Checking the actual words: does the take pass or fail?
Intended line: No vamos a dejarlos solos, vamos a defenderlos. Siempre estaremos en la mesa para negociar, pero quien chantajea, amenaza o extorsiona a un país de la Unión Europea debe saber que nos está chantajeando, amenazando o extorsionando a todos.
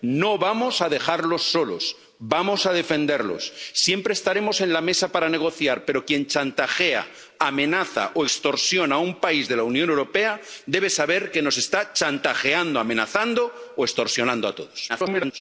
fail